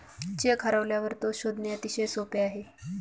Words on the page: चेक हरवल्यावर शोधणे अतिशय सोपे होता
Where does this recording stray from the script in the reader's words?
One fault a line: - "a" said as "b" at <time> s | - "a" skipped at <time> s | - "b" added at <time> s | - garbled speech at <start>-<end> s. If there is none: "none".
- "तो" added at 1.2 s
- "होता" said as "आहे" at 2.4 s